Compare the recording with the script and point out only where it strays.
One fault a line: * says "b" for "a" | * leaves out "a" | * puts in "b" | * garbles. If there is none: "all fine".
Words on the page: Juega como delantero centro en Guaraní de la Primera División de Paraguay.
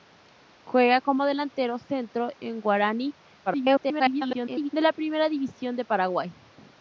* garbles